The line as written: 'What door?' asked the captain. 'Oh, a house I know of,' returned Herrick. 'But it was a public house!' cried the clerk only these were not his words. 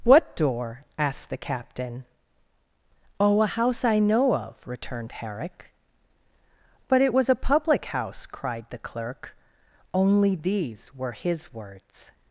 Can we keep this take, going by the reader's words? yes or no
no